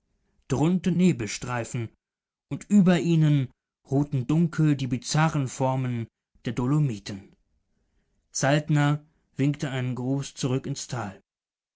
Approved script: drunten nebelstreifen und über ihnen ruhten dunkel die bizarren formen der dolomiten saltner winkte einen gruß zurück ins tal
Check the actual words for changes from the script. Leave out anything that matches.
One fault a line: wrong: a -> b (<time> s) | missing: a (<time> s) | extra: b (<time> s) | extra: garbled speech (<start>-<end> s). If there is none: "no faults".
no faults